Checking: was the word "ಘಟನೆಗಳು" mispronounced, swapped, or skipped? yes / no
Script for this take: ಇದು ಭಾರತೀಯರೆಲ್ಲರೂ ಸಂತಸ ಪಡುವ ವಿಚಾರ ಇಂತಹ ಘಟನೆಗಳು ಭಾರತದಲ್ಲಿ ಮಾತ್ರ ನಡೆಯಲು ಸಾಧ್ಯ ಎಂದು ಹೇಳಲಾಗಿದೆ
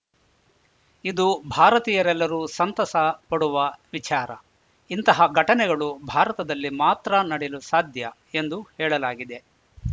no